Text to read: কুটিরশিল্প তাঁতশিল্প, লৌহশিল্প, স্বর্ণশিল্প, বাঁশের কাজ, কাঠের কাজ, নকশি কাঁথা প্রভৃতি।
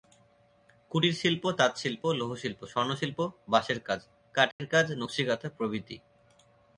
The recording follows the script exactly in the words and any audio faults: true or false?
false